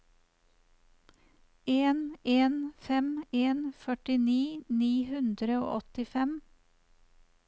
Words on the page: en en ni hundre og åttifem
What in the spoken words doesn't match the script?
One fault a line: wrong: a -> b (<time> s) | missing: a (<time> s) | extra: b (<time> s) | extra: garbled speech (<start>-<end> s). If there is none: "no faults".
extra: fem en førtini (2.9 s)